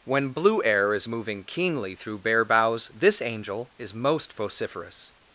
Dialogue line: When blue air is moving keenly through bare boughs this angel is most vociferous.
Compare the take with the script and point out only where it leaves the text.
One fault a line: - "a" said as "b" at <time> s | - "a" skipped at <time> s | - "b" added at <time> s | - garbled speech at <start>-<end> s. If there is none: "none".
none